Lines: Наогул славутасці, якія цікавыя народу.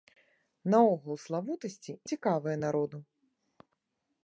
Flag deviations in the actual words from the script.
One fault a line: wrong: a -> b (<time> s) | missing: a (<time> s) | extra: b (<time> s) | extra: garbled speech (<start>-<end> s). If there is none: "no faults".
missing: якія (1.9 s)